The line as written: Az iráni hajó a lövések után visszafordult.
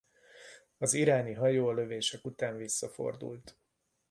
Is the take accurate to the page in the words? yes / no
yes